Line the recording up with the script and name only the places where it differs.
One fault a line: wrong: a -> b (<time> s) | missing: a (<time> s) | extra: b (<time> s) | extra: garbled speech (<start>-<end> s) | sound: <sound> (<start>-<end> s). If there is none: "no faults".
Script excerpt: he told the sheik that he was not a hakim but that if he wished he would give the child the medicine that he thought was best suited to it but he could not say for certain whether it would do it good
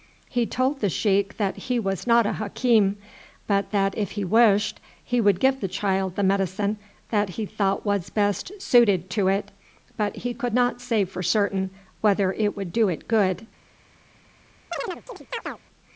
sound: chirp (14.7-15.6 s)